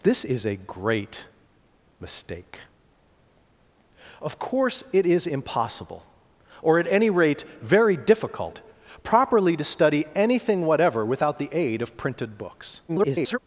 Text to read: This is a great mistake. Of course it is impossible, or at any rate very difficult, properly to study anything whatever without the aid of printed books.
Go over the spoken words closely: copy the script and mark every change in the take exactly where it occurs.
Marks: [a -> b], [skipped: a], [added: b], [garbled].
This is a great mistake. Of course it is impossible, or at any rate very difficult, properly to study anything whatever without the aid of printed books. [garbled]